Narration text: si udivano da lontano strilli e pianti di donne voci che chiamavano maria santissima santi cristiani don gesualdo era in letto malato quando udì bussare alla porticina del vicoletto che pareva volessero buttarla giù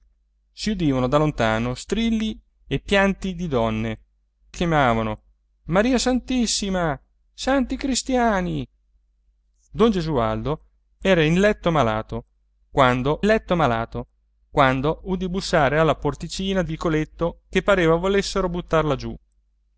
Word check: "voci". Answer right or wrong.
wrong